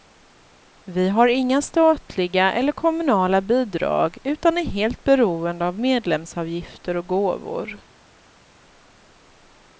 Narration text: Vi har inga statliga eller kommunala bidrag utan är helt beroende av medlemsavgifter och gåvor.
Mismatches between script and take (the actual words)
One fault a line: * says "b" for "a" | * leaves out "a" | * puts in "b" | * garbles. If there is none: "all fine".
all fine